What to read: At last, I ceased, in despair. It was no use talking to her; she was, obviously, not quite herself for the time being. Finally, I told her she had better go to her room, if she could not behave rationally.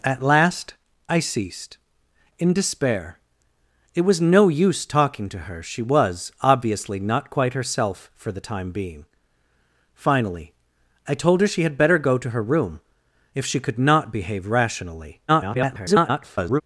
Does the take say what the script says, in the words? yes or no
no